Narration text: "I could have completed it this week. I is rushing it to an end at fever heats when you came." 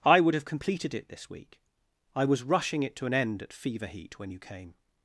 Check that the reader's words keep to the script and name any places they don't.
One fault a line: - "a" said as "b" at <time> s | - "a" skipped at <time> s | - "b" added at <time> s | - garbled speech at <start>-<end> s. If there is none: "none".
- "could" said as "would" at 0.2 s
- "is" said as "was" at 2.2 s
- "heats" said as "heat" at 3.9 s